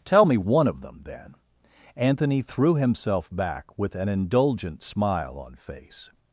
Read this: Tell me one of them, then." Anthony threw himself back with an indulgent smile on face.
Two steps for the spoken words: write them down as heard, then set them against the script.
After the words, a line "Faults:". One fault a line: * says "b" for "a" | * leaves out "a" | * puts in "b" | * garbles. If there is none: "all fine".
Tell me one of them, then." Anthony threw himself back with an indulgent smile on face.
Faults:
all fine